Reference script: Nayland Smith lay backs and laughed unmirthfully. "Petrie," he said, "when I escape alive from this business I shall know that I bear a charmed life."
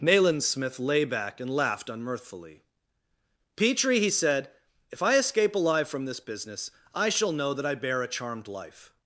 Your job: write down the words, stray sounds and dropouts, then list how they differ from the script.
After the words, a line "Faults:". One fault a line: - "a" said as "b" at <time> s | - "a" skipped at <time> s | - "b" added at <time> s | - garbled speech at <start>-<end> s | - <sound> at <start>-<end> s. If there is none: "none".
Nayland Smith lay back and laughed unmirthfully. "Petrie," he said, "if I escape alive from this business I shall know that I bear a charmed life."
Faults:
- "backs" said as "back" at 1.1 s
- "when" said as "if" at 4.9 s